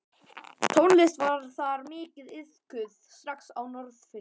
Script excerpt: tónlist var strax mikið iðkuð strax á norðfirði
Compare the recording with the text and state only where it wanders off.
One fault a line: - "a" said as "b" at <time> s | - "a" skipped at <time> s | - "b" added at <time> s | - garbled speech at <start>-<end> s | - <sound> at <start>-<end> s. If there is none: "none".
- "strax" said as "þar" at 1.6 s